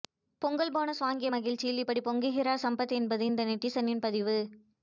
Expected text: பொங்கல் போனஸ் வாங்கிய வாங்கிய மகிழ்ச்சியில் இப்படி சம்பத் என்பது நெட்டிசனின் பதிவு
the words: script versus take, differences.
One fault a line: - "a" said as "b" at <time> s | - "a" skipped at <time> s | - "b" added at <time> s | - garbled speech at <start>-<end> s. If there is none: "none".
- "வாங்கிய" skipped at 1.3 s
- "பொங்குகிறார்" added at 2.1 s
- "இந்த" added at 3.3 s